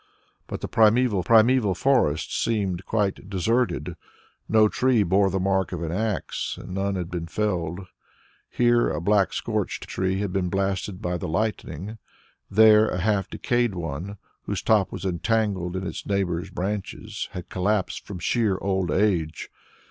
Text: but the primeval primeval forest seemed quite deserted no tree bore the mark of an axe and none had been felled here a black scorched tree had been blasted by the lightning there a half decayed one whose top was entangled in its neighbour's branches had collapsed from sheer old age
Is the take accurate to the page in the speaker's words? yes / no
yes